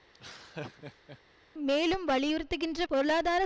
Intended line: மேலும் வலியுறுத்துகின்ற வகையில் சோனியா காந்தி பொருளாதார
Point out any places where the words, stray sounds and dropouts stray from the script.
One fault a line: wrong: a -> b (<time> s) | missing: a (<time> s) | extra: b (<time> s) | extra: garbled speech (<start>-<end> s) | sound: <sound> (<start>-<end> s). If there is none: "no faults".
sound: laugh (0.1-1.2 s)
missing: வகையில் சோனியா காந்தி (2.8 s)